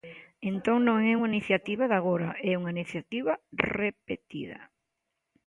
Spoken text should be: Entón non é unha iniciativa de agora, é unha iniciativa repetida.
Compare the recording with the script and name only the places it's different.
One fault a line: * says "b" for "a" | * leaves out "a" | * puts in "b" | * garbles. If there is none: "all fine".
all fine